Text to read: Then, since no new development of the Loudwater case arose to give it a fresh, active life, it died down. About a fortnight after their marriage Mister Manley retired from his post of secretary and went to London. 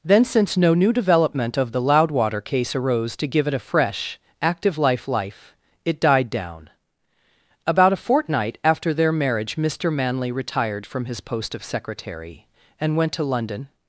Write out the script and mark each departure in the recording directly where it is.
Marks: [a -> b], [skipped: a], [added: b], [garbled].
Then, since no new development of the Loudwater case arose to give it a fresh, active life, [added: life] it died down. About a fortnight after their marriage Mister Manley retired from his post of secretary and went to London.